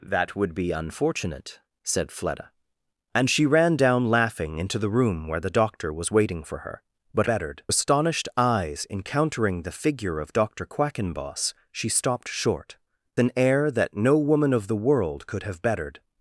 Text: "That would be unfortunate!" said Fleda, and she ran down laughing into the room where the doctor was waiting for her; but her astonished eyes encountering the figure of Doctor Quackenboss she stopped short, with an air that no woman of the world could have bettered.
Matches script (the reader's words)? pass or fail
fail